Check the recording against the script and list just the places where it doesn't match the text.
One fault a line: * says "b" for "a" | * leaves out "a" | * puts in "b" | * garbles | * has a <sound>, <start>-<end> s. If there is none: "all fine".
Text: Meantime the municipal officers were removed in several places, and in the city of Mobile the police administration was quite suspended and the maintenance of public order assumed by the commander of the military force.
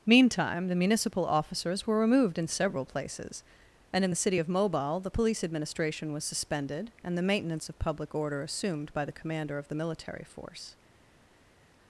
* leaves out "quite"